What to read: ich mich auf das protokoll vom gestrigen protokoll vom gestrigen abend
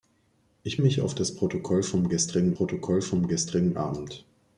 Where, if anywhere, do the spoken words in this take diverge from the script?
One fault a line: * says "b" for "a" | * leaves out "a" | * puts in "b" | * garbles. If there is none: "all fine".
all fine